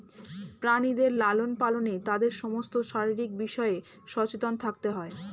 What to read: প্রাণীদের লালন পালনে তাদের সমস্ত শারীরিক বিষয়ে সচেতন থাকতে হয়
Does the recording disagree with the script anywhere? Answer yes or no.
no